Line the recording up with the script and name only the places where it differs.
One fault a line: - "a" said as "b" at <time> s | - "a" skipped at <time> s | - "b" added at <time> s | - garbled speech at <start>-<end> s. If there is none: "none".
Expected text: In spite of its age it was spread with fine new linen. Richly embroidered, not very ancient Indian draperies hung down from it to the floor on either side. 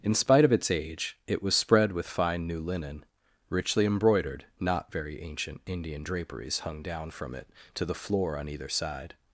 none